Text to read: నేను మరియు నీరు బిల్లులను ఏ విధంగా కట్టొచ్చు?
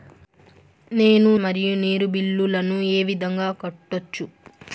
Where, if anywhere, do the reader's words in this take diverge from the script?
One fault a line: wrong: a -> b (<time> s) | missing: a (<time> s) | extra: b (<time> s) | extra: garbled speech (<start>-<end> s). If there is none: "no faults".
no faults